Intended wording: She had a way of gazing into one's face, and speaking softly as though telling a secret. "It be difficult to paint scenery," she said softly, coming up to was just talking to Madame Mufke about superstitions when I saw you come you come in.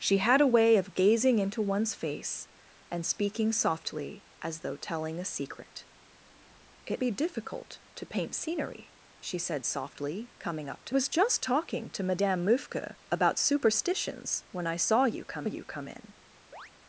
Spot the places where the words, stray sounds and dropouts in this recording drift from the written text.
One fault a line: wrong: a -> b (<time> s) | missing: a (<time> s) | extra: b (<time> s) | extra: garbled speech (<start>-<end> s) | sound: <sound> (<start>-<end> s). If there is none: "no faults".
sound: chirp (16.5-16.7 s)